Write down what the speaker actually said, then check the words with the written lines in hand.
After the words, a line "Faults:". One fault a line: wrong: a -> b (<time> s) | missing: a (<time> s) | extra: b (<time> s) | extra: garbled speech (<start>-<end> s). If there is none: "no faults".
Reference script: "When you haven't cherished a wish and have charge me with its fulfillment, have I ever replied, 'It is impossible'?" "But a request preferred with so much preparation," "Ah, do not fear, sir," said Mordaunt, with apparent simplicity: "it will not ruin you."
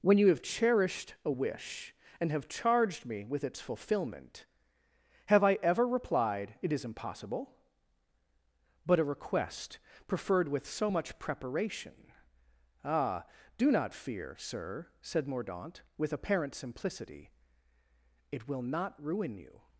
"When you have cherished a wish and have charged me with its fulfillment, have I ever replied, 'It is impossible'?" "But a request preferred with so much preparation," "Ah, do not fear, sir," said Mordaunt, with apparent simplicity: "it will not ruin you."
Faults:
wrong: haven't -> have (0.3 s)
wrong: charge -> charged (2.5 s)